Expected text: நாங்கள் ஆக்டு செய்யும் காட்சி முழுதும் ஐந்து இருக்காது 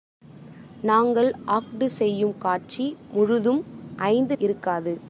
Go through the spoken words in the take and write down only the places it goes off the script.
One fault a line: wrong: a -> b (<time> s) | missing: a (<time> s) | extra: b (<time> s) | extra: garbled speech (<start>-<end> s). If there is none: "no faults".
no faults